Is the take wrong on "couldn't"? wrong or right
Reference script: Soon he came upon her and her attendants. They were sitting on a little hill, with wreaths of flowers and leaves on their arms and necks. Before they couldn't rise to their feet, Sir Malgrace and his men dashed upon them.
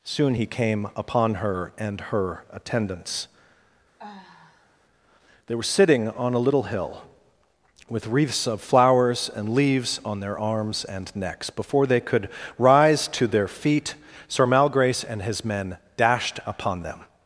wrong